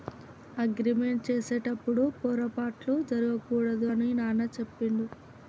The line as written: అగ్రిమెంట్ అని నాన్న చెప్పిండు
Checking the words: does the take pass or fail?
fail